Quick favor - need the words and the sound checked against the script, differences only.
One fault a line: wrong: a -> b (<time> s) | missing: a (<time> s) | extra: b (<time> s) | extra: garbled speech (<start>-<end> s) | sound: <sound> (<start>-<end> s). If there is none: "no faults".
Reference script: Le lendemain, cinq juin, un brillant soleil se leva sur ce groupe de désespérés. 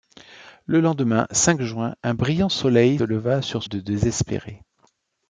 missing: se (3.0 s)
missing: ce groupe (3.6 s)